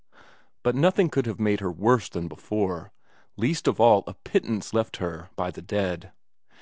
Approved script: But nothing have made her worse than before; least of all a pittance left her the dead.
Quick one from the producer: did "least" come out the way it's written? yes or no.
yes